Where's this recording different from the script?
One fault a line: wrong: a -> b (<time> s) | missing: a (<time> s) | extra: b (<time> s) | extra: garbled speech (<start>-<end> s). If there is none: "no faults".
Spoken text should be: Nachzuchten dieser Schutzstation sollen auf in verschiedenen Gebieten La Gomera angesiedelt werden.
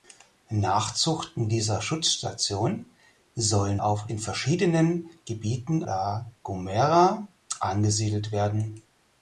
no faults